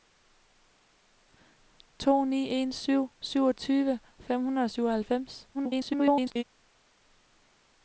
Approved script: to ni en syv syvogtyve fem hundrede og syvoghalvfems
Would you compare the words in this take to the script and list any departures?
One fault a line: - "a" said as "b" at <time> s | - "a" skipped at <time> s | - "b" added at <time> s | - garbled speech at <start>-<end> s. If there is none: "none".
- garbled speech at 5.5-6.4 s